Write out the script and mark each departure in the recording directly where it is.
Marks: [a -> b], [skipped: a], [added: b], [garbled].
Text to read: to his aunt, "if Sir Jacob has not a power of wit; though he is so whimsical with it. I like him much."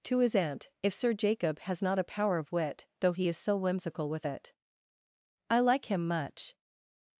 to his aunt, "if Sir Jacob has not a power of wit; though he is so whimsical with it. I like him much."